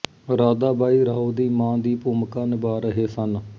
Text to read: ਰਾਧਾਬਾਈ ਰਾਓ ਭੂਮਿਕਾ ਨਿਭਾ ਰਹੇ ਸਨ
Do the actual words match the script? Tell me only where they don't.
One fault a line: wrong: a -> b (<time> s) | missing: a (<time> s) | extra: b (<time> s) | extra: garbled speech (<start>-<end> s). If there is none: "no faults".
extra: ਦੀ ਮਾਂ ਦੀ (1.3 s)